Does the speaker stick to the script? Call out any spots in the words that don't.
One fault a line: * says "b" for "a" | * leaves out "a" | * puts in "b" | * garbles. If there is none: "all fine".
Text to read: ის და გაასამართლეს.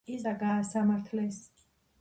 all fine